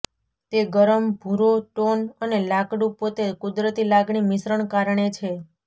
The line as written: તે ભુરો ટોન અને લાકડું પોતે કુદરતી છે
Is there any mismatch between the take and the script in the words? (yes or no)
yes